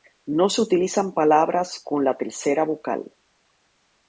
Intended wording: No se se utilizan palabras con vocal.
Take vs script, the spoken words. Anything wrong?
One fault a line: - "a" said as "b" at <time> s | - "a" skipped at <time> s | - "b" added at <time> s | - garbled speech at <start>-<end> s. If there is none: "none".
- "se" skipped at 0.6 s
- "la tercera" added at 2.1 s